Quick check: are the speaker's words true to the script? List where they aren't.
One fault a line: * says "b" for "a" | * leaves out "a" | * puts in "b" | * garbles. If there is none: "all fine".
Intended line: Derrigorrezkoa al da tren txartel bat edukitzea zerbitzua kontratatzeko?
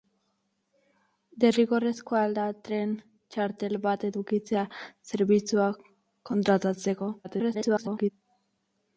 * garbles